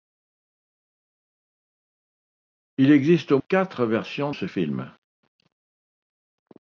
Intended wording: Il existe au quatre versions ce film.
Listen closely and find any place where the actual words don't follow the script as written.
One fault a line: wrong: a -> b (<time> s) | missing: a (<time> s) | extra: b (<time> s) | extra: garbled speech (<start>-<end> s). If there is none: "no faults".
no faults